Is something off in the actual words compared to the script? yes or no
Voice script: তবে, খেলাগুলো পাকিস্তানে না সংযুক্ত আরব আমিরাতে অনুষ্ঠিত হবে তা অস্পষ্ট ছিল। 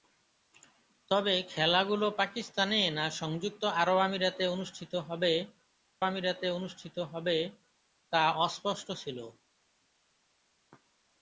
yes